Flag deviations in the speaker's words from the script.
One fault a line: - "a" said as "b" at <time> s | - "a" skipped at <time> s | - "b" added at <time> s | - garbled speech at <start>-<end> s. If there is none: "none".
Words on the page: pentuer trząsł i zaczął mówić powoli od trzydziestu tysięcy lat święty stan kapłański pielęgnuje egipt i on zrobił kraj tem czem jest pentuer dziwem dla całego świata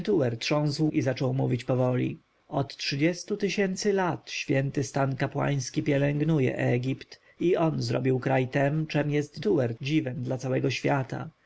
none